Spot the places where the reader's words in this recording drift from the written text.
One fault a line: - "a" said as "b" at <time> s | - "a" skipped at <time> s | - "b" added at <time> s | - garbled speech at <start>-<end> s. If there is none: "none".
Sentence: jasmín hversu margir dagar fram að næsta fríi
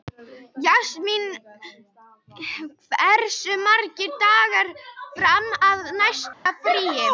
none